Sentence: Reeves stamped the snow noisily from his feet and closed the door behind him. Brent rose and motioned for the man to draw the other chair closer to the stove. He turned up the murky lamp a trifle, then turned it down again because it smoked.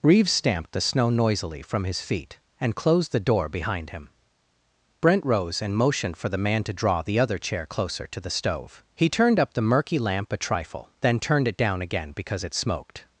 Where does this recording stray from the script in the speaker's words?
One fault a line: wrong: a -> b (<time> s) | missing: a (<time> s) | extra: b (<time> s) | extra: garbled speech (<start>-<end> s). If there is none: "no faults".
no faults